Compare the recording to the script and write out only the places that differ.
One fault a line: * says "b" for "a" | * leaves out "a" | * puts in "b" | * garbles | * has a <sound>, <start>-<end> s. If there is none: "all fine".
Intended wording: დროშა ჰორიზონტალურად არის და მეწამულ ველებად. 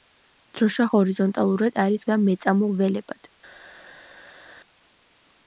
all fine